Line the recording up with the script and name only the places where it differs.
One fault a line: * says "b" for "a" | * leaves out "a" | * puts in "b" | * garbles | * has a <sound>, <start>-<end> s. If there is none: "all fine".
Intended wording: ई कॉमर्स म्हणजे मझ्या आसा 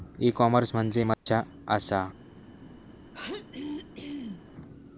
* has a dropout, 1.1-1.3 s
* has a throat clearing, 3.1-4.5 s